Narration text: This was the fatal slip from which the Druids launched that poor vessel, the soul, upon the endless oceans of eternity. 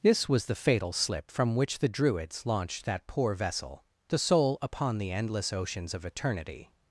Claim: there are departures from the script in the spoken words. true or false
false